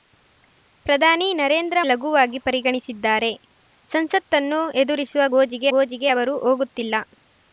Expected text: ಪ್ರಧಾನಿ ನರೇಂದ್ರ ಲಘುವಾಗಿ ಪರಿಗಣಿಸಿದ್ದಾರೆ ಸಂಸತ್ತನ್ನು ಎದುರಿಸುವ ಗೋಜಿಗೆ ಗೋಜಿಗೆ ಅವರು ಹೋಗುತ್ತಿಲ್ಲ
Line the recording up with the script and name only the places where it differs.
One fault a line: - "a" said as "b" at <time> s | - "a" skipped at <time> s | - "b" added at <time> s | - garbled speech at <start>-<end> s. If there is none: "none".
none